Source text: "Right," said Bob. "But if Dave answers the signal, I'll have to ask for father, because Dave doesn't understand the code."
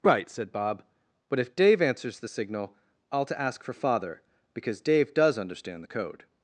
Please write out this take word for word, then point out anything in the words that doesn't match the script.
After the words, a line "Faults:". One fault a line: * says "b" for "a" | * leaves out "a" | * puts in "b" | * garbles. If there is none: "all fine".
"Right," said Bob. "But if Dave answers the signal, I'll to ask for father, because Dave does understand the code."
Faults:
* leaves out "have"
* says "does" for "doesn't"